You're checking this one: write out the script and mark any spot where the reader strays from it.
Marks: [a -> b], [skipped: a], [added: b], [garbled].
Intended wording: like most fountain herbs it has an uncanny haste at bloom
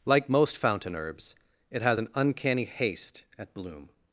like most fountain herbs it has an uncanny haste at bloom